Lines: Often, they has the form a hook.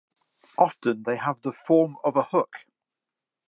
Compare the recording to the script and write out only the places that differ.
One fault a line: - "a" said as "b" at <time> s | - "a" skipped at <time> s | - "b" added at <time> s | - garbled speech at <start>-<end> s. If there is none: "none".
- "has" said as "have" at 1.2 s
- "of" added at 2.0 s